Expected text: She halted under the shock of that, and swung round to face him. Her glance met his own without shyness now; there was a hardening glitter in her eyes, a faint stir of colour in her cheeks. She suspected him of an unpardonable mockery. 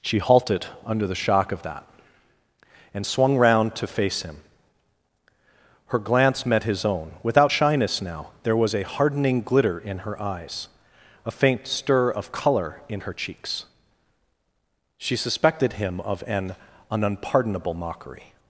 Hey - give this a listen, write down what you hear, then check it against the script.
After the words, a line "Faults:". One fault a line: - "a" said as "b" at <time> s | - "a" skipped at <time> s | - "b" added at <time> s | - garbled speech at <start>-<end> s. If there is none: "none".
She halted under the shock of that, and swung round to face him. Her glance met his own without shyness now; there was a hardening glitter in her eyes, a faint stir of colour in her cheeks. She suspected him of an an unpardonable mockery.
Faults:
- "an" added at 16.9 s